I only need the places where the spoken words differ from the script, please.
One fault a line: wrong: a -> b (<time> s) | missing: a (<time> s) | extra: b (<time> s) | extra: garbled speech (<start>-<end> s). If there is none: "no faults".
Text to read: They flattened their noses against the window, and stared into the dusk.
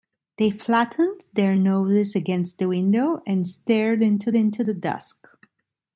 extra: into (4.3 s)